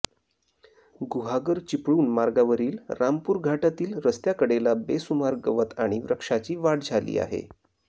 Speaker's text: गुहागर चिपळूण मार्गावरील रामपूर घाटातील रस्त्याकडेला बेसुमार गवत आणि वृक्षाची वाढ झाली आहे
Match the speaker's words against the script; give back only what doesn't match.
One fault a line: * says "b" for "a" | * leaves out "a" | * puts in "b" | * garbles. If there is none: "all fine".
all fine